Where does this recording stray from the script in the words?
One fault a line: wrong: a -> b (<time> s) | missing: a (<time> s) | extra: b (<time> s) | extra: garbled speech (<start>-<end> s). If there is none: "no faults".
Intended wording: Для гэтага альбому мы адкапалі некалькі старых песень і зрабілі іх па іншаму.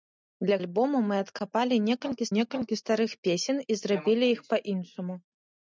missing: гэтага (0.6 s)
extra: некалькі (2.4 s)